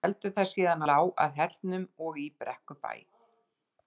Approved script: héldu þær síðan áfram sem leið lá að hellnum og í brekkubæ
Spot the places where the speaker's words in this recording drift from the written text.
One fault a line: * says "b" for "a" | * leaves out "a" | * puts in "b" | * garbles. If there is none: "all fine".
* leaves out "áfram sem leið"